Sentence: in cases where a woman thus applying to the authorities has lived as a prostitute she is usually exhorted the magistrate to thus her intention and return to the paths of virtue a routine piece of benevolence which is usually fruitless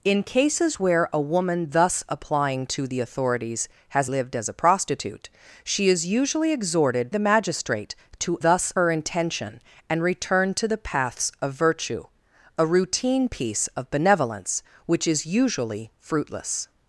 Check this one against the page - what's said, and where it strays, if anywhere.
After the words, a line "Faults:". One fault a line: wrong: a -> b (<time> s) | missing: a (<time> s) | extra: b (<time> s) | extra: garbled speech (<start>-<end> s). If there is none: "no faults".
in cases where a woman thus applying to the authorities has lived as a prostitute she is usually exhorted the magistrate to thus her intention and return to the paths of virtue a routine piece of benevolence which is usually fruitless
Faults:
no faults